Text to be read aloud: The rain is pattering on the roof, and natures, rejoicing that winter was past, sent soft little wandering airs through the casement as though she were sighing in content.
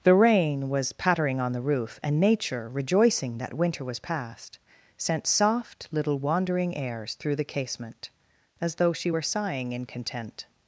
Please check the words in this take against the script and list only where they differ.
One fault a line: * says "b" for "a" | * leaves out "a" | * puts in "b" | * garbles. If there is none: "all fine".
* says "was" for "is"
* says "nature" for "natures"